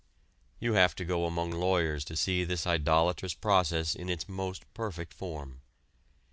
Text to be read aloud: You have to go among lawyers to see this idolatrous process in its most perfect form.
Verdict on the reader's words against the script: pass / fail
pass